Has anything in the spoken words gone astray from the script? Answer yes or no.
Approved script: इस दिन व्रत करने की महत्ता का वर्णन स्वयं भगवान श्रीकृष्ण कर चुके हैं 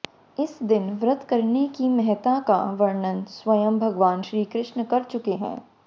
no